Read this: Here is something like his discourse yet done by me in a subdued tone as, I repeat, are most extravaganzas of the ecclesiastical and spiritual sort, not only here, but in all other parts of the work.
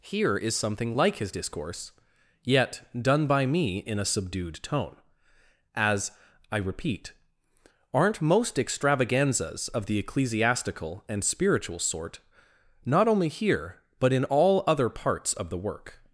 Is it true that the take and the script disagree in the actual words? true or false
true